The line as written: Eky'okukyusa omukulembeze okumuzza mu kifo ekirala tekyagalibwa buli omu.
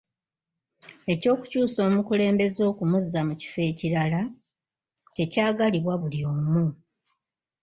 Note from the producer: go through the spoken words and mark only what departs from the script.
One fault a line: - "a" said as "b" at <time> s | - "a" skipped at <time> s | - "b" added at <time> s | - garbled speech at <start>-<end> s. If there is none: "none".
none